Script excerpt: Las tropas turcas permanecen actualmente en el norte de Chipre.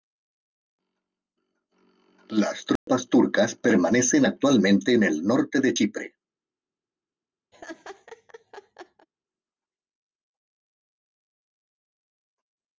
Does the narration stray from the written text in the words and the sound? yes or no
yes